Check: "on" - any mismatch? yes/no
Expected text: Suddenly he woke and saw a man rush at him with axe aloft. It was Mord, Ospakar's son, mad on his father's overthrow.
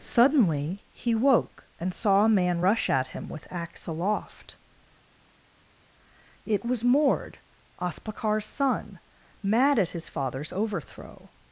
yes